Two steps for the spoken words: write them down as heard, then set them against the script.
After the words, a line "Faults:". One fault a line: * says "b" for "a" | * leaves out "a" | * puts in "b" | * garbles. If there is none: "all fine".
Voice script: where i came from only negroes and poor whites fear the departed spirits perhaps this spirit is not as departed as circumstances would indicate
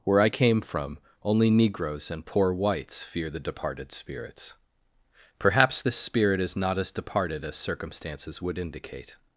where i came from only negroes and poor whites fear the departed spirits perhaps this spirit is not as departed as circumstances would indicate
Faults:
all fine